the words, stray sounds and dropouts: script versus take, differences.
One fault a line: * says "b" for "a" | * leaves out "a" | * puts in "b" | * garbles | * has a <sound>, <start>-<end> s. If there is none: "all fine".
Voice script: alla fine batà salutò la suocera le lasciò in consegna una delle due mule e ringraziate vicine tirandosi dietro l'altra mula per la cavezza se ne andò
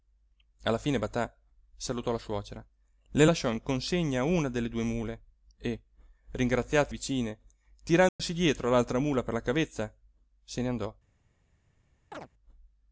* has a dropout, 8.1-8.2 s
* has a chirp, 12.1-12.3 s